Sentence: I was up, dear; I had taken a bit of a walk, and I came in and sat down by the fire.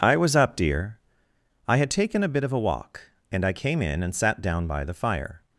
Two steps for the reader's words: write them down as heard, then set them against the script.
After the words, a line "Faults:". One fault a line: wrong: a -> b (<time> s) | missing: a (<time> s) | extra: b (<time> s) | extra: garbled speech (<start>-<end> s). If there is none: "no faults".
I was up, dear; I had taken a bit of a walk, and I came in and sat down by the fire.
Faults:
no faults